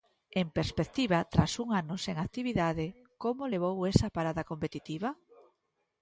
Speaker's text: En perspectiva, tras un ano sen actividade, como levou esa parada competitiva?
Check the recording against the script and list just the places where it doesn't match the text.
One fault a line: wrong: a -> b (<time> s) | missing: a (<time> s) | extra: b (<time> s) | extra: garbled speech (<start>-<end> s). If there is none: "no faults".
no faults